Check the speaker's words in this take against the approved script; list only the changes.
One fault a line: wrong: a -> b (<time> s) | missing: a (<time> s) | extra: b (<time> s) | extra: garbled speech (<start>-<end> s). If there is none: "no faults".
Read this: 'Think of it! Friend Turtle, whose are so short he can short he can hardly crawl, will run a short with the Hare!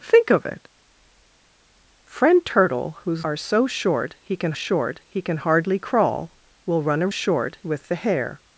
no faults